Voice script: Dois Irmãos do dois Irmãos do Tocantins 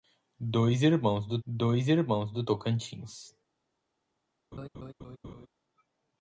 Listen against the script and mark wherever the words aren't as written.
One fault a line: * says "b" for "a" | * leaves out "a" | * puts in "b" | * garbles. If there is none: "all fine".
all fine